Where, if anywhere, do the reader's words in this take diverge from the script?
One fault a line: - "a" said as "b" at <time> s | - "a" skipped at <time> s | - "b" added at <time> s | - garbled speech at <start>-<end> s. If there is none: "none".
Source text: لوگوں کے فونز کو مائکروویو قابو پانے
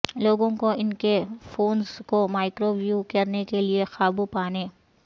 - "کو ان" added at 0.5 s
- "کرنے کے لئے" added at 3.1 s